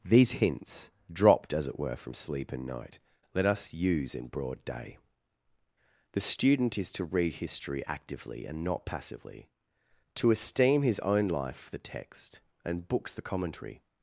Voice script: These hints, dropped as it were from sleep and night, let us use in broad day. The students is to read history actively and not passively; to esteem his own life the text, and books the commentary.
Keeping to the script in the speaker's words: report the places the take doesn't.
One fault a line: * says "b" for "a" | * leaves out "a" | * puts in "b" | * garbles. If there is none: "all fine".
* says "student" for "students"